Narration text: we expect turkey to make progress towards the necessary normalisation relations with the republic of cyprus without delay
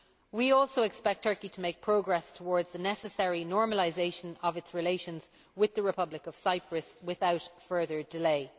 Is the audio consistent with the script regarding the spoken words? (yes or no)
no